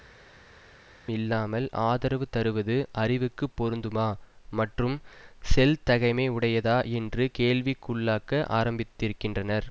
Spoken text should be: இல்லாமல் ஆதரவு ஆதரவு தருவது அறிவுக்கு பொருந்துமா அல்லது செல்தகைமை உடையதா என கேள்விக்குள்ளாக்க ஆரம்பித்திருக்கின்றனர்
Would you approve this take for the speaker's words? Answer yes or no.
no